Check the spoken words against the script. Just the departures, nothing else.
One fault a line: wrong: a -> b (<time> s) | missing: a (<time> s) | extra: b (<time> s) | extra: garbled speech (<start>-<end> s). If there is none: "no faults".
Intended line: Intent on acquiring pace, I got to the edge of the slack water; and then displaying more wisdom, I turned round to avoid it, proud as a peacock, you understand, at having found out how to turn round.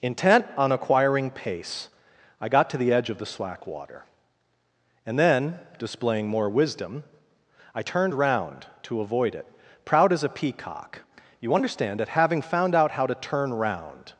wrong: at -> that (12.0 s)